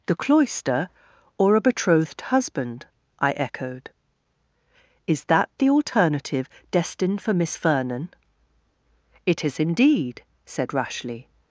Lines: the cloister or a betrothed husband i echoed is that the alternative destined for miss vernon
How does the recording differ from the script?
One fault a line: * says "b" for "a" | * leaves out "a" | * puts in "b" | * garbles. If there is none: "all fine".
* puts in "it is indeed said rashleigh"